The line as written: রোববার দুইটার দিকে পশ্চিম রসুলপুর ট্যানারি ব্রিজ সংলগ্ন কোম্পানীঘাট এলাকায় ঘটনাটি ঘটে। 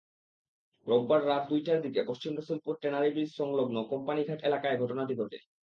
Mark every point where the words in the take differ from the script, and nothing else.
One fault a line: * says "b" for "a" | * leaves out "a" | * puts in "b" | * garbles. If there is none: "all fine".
* puts in "রাত"